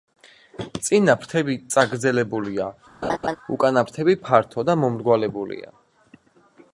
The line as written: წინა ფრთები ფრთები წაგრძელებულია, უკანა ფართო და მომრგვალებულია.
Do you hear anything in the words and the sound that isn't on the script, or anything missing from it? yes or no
yes